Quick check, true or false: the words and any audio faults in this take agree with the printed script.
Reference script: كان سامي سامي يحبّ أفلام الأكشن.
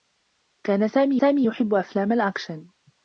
true